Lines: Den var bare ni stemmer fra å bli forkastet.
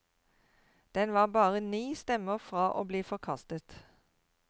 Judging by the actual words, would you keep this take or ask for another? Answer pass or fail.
pass